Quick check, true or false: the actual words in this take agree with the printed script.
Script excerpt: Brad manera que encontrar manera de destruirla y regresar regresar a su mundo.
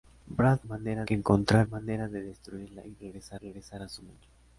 true